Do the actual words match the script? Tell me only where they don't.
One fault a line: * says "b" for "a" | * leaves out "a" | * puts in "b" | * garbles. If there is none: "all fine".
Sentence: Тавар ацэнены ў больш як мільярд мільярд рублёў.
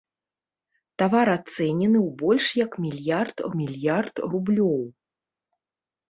all fine